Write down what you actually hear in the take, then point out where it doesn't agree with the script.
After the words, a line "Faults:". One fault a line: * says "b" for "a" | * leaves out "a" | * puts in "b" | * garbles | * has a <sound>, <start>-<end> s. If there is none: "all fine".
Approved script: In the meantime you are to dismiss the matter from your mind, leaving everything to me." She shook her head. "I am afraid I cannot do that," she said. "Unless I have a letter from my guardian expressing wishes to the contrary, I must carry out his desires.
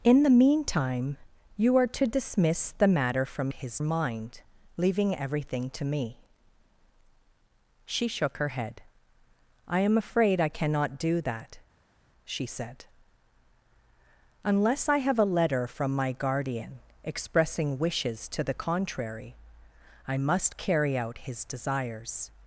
In the meantime you are to dismiss the matter from his mind, leaving everything to me." She shook her head. "I am afraid I cannot do that," she said. "Unless I have a letter from my guardian expressing wishes to the contrary, I must carry out his desires.
Faults:
* says "his" for "your"